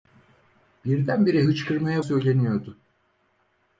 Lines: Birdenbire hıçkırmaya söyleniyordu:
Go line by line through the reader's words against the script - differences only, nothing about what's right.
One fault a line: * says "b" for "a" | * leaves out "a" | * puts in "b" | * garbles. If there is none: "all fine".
all fine